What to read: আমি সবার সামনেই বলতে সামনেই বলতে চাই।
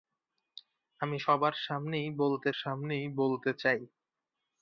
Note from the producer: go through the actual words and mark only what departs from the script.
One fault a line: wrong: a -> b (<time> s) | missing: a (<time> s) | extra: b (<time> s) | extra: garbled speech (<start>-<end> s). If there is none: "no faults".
no faults